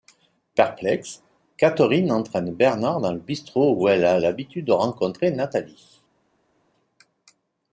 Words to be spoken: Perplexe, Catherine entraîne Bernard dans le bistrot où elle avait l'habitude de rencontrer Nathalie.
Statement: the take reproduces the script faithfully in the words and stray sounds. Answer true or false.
false